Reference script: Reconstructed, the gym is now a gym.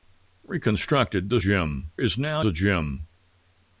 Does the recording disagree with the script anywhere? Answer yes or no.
no